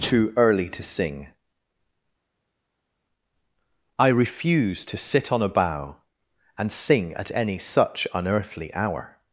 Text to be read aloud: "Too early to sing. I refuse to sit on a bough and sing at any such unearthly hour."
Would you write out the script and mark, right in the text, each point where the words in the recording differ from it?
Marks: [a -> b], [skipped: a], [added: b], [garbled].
"Too early to sing. I refuse to sit on a bough and sing at any such unearthly hour."